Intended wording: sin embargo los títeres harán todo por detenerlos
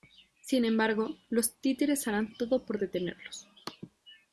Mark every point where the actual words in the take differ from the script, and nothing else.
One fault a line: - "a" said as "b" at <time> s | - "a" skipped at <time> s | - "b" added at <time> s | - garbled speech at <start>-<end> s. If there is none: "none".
none